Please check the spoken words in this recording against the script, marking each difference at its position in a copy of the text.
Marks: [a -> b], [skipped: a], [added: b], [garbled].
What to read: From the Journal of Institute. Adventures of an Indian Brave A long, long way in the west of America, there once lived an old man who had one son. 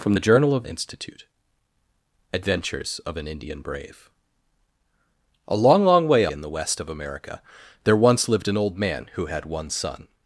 From the Journal of Institute. Adventures of an Indian Brave A long, long way in the west of America, there once lived an old man who had one son.